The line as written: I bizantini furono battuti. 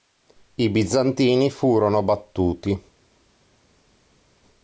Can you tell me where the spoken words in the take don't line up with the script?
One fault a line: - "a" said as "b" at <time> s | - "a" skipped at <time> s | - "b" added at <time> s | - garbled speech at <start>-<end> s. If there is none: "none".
none